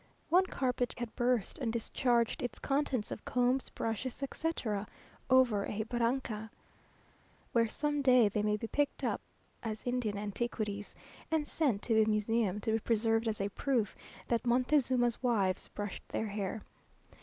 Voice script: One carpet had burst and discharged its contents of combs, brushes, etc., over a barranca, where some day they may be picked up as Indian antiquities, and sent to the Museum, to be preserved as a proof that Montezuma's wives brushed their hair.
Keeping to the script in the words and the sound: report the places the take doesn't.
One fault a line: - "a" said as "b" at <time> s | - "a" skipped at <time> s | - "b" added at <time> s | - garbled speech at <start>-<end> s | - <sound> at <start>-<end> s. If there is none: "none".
none